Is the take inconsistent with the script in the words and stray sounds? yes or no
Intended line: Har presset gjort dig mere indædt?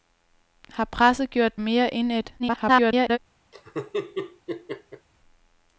yes